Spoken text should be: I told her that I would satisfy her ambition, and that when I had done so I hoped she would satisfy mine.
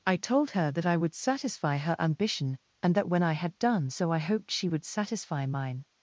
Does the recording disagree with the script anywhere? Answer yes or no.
no